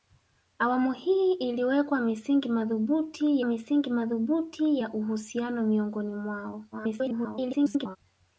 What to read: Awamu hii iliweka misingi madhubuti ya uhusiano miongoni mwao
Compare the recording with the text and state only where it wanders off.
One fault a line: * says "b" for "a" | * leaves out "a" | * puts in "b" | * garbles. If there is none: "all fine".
* puts in "misingi madhubuti"
* garbles